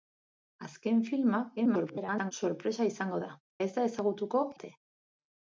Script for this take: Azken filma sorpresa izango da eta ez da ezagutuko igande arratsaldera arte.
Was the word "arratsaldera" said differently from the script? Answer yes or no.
yes